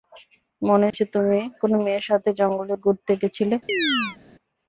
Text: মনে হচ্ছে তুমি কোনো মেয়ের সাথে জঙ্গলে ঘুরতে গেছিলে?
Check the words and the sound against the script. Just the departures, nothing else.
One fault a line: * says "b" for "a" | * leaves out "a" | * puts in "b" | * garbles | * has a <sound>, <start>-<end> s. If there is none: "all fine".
* has a dropout, 0.9-0.9 s
* has a chirp, 3.7-4.2 s